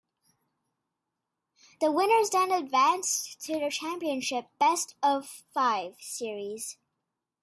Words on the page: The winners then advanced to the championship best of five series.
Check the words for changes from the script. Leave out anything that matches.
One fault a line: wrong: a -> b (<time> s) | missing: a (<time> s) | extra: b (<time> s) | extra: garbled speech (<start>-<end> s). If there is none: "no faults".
no faults